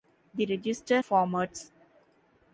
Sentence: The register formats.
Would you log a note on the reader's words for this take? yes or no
no